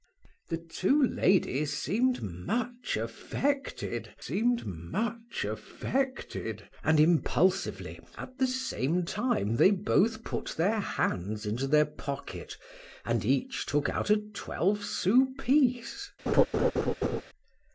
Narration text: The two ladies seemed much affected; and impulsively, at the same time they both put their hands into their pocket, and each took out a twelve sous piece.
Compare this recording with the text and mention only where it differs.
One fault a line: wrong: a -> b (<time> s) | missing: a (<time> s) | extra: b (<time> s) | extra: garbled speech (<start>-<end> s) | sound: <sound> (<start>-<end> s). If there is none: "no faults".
extra: seemed much affected (4.2 s)
sound: laugh (16.3-17.2 s)